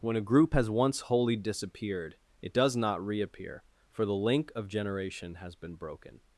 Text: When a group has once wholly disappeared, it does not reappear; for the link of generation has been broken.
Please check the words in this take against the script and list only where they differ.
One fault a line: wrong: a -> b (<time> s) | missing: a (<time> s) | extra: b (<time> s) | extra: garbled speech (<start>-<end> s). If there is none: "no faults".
no faults